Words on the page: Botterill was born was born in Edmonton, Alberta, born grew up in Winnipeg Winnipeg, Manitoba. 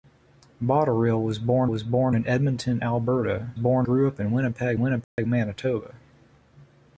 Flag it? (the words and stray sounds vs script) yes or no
yes